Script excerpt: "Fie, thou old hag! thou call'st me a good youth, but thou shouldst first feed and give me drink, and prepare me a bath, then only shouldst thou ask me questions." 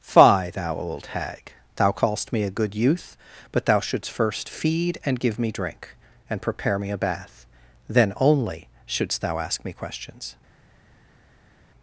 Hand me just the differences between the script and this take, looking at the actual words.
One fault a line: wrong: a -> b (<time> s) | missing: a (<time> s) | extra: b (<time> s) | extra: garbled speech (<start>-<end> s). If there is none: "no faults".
no faults